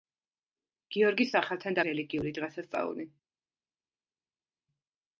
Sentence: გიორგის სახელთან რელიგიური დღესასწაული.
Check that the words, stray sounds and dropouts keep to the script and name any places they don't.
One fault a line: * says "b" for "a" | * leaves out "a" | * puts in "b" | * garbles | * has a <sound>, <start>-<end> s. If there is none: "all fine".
all fine